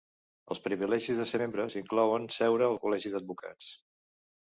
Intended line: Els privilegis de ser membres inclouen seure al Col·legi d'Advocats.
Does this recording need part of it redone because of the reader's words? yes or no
no